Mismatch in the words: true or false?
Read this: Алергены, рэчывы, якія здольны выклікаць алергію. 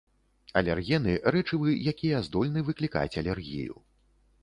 false